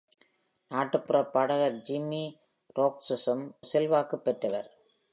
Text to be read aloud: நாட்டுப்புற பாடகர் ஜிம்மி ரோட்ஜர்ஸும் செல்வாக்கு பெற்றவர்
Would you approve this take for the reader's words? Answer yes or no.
yes